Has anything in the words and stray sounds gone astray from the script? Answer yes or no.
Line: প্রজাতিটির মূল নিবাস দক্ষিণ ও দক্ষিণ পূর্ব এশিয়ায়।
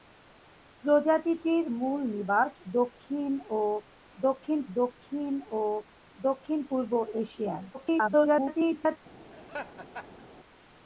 yes